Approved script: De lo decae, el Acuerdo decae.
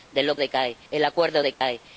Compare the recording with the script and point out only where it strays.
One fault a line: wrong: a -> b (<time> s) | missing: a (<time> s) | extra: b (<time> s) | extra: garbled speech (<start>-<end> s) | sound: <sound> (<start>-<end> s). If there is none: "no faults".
sound: dropout (1.5-1.6 s)